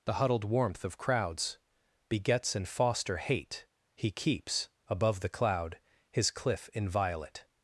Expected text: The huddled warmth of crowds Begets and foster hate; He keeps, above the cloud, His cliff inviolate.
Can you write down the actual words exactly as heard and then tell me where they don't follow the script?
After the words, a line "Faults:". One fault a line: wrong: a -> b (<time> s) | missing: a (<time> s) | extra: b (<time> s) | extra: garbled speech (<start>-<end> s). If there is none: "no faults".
The huddled warmth of crowds Begets and foster hate; He keeps, above the cloud, His cliff inviolate.
Faults:
no faults